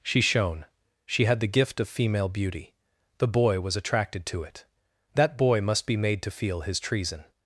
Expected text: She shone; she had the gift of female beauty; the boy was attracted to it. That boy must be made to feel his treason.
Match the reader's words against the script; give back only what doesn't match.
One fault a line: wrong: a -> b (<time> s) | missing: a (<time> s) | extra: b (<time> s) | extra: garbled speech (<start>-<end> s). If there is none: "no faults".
no faults